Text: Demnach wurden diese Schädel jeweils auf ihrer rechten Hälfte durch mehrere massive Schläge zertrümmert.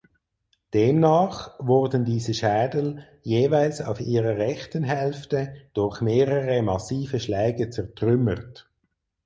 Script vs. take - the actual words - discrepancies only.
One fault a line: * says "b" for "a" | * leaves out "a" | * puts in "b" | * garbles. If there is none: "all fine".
all fine